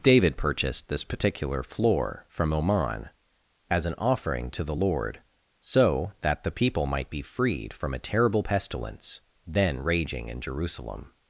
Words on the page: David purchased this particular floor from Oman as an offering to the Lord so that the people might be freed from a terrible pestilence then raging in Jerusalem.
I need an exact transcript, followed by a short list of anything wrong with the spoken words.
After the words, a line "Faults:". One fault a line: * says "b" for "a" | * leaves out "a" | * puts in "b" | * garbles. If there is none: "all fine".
David purchased this particular floor from Oman as an offering to the Lord so that the people might be freed from a terrible pestilence then raging in Jerusalem.
Faults:
all fine